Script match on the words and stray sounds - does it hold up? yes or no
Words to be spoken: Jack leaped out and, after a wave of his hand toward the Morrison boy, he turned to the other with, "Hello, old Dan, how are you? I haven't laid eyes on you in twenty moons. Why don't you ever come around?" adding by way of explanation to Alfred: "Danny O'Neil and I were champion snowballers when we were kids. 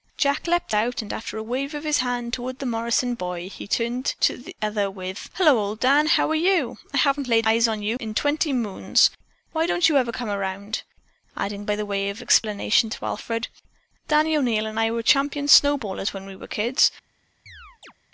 no